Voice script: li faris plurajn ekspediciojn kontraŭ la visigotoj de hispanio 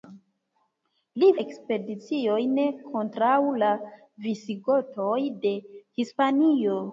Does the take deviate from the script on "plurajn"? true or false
true